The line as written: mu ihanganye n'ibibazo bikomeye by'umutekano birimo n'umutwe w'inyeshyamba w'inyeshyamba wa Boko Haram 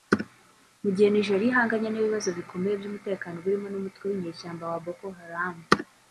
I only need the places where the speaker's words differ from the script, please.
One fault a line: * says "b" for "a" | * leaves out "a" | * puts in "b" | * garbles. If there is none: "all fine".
* puts in "gihe Nigeria"
* leaves out "w'inyeshyamba"